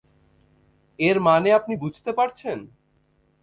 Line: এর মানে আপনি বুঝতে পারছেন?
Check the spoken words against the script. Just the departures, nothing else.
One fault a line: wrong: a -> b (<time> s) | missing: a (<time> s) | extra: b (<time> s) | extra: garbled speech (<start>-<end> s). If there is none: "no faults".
no faults